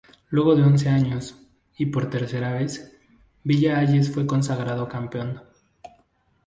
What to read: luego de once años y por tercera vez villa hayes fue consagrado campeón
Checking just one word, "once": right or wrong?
right